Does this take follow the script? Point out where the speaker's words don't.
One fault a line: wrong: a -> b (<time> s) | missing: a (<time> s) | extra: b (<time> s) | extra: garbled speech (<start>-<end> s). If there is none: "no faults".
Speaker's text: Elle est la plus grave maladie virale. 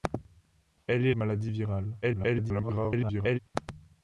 missing: la plus grave (1.1 s)
extra: garbled speech (2.0-3.4 s)